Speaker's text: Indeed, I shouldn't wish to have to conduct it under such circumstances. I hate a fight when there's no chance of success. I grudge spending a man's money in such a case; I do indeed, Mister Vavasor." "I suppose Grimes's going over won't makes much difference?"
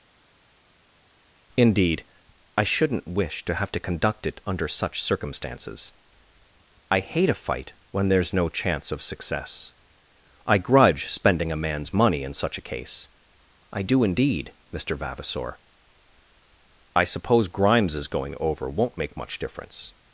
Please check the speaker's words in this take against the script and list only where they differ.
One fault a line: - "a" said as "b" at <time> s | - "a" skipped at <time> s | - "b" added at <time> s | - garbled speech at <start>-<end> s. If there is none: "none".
- "makes" said as "make" at 19.0 s